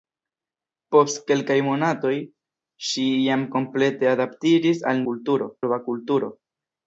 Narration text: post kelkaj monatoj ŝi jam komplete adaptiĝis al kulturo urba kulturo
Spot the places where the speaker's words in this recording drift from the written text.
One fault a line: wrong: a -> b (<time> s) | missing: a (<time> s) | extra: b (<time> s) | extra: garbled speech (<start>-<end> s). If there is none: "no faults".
no faults